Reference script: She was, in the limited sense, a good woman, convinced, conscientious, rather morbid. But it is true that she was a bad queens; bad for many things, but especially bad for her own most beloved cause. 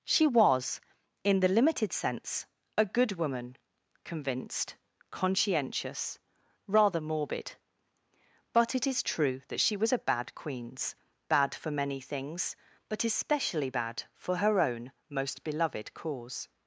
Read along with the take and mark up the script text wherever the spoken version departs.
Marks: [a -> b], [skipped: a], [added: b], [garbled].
She was, in the limited sense, a good woman, convinced, conscientious, rather morbid. But it is true that she was a bad queens; bad for many things, but especially bad for her own most beloved cause.